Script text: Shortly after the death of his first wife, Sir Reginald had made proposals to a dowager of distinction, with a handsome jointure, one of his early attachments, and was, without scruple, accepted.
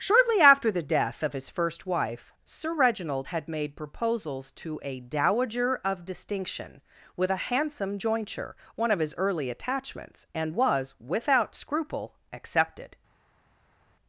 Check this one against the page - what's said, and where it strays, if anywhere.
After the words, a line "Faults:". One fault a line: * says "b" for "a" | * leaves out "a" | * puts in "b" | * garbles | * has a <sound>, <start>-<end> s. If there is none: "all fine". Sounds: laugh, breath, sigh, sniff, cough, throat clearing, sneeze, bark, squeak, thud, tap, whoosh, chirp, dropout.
Shortly after the death of his first wife, Sir Reginald had made proposals to a dowager of distinction, with a handsome jointure, one of his early attachments, and was, without scruple, accepted.
Faults:
all fine